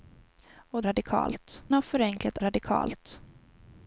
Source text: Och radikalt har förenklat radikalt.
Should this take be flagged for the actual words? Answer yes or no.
no